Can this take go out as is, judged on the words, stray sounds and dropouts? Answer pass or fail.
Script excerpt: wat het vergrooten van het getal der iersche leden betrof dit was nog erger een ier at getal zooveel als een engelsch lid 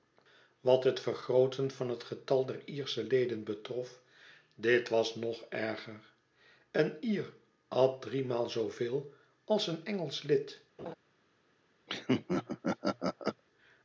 fail